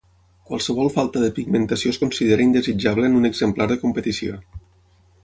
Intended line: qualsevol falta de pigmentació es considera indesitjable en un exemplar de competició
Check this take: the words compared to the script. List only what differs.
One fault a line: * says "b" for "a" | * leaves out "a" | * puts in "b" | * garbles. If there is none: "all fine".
all fine